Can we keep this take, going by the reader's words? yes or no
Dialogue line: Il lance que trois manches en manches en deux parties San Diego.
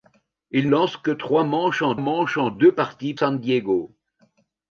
yes